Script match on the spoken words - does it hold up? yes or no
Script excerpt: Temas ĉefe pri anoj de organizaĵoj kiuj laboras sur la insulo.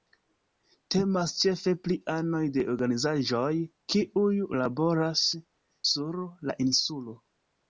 yes